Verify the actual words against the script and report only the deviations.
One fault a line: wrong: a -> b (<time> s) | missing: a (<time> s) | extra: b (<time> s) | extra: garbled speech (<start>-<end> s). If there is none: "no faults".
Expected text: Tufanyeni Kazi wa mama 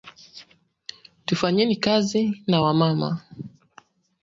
extra: na (2.5 s)